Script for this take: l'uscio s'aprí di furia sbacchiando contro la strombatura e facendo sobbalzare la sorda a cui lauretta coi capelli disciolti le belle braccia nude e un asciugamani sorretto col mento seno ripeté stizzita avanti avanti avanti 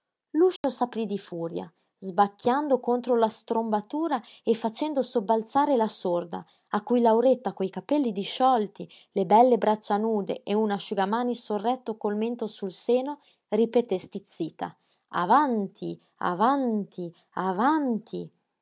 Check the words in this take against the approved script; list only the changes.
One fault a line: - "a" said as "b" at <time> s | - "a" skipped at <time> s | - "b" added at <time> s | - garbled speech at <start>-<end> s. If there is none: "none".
- "sul" added at 12.5 s